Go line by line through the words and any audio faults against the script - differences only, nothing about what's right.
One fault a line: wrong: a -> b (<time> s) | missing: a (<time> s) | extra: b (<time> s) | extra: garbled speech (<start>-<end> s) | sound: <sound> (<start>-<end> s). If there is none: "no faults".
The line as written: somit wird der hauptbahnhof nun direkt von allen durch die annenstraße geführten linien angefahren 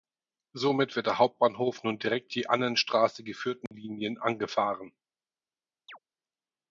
missing: von allen durch (2.3 s)
sound: dropout (3.7-3.7 s)
sound: chirp (5.9-6.0 s)